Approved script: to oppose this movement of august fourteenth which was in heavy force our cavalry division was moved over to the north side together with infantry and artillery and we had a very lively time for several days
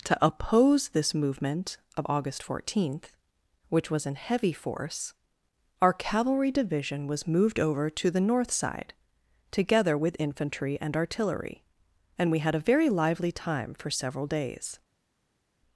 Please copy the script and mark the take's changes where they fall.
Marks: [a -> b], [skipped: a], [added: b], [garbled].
to oppose this movement of august fourteenth which was in heavy force our cavalry division was moved over to the north side together with infantry and artillery and we had a very lively time for several days